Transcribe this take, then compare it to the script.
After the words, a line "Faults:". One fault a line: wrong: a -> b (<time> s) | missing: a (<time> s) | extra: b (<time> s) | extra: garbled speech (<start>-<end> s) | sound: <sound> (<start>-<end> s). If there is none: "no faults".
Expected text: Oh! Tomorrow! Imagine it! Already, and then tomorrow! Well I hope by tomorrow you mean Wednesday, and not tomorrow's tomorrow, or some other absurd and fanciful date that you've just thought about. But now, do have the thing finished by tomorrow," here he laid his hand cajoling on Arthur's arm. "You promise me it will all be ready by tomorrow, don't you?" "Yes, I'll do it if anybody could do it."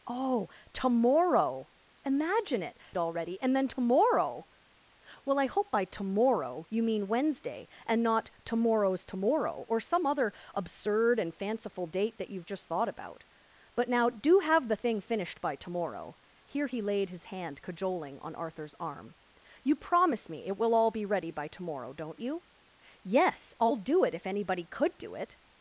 Oh! Tomorrow! Imagine it! Already, and then tomorrow! Well I hope by tomorrow you mean Wednesday, and not tomorrow's tomorrow, or some other absurd and fanciful date that you've just thought about. But now, do have the thing finished by tomorrow," here he laid his hand cajoling on Arthur's arm. "You promise me it will all be ready by tomorrow, don't you?" "Yes, I'll do it if anybody could do it."
Faults:
no faults